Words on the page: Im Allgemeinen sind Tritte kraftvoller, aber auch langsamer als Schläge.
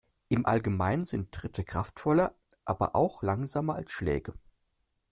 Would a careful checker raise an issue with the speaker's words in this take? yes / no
no